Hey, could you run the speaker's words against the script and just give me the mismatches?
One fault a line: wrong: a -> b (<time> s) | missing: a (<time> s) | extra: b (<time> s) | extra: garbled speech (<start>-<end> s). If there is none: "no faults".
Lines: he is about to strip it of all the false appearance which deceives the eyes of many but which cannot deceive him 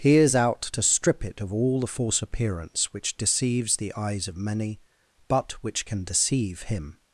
wrong: about -> out (0.3 s)
wrong: cannot -> can (5.8 s)